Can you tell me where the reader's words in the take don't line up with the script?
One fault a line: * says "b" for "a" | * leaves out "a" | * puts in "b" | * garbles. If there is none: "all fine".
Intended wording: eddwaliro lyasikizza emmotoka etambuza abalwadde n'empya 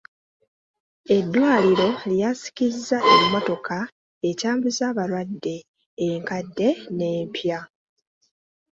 * puts in "enkadde"